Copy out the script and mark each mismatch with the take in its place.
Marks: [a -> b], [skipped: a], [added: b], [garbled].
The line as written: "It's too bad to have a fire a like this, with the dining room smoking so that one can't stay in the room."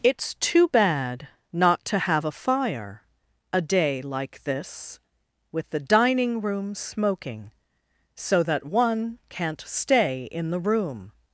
"It's too bad [added: not] to have a fire a [added: day] like this, with the dining room smoking so that one can't stay in the room."